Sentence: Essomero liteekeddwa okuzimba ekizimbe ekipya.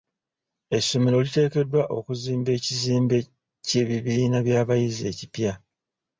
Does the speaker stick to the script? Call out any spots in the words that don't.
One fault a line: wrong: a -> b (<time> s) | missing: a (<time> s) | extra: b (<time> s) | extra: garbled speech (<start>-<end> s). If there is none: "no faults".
extra: ky'ebibiina by'abayizi (3.7 s)